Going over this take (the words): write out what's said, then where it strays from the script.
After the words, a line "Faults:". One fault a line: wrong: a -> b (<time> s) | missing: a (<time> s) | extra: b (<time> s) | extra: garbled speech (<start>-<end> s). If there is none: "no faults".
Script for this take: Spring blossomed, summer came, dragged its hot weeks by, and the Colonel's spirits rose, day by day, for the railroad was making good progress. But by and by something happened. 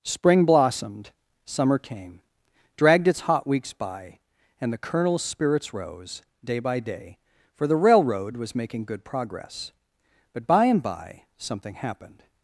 Spring blossomed, summer came, dragged its hot weeks by, and the Colonel's spirits rose, day by day, for the railroad was making good progress. But by and by something happened.
Faults:
no faults